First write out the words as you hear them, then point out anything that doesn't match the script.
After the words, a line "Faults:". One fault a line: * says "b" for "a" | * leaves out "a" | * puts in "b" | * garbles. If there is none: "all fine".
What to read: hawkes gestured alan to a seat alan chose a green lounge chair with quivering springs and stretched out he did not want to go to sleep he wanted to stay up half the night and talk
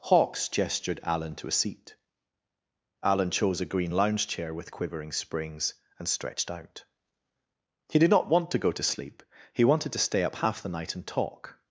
hawkes gestured alan to a seat alan chose a green lounge chair with quivering springs and stretched out he did not want to go to sleep he wanted to stay up half the night and talk
Faults:
all fine